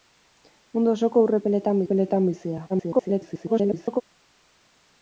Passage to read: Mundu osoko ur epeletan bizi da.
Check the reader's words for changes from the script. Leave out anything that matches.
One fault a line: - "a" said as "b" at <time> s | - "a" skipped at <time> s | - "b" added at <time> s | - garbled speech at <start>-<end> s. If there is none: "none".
- "epeletan" added at 1.8 s
- garbled speech at 2.7-4.0 s